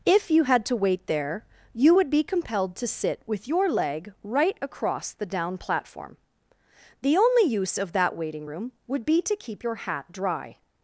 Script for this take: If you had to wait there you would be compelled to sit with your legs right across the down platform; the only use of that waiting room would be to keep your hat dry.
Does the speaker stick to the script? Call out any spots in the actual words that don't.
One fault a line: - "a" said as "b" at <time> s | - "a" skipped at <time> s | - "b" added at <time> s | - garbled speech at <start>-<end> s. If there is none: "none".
- "legs" said as "leg" at 3.7 s